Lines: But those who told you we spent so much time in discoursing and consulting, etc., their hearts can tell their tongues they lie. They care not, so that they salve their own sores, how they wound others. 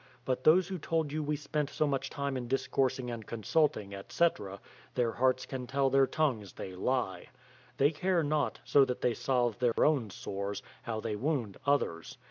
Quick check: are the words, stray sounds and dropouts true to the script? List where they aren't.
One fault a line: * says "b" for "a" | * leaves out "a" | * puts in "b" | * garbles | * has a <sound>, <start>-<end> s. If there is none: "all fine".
* has a dropout, 9.7-9.8 s